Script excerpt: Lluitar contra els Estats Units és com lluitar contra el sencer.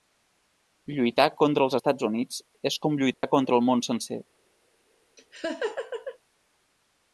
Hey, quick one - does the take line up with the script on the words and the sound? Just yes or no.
no